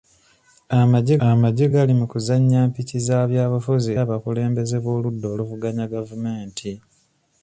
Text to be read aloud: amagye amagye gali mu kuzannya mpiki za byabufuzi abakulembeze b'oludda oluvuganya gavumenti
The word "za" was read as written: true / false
true